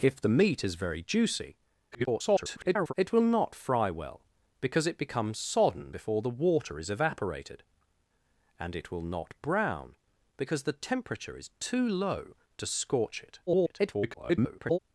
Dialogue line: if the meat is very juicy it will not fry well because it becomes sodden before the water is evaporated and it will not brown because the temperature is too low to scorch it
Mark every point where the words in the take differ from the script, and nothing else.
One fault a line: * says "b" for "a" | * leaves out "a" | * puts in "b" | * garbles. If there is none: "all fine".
* garbles
* garbles